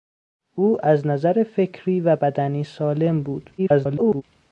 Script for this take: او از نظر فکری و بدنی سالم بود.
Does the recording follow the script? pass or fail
fail